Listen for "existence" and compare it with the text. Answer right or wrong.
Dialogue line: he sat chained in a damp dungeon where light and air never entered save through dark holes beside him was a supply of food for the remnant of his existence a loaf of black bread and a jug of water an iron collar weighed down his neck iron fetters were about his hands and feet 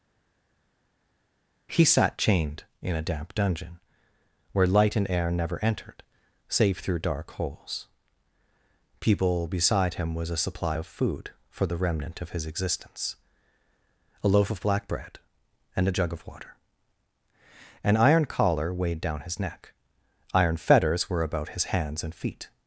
right